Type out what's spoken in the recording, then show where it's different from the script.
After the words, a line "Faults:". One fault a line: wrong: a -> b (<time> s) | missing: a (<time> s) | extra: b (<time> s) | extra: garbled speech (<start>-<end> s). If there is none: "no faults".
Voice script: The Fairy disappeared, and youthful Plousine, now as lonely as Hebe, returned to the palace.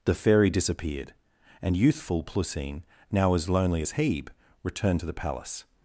The Fairy disappeared, and youthful Plousine, now as lonely as Hebe, returned to the palace.
Faults:
no faults